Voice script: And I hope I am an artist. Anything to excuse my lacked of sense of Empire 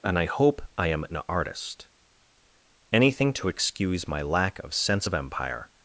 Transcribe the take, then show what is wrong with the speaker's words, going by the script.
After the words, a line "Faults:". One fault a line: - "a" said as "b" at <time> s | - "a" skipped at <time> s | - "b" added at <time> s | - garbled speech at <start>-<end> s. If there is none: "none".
And I hope I am an artist. Anything to excuse my lack of sense of Empire
Faults:
- "lacked" said as "lack" at 4.2 s